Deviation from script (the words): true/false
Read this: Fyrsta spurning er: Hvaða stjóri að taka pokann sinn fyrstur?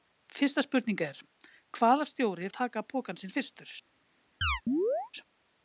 false